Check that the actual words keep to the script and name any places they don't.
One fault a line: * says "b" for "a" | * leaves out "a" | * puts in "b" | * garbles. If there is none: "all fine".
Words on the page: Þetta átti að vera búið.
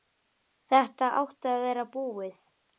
all fine